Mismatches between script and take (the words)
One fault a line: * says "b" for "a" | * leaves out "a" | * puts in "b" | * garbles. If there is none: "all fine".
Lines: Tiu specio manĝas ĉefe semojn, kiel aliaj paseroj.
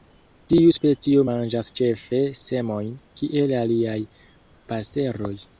all fine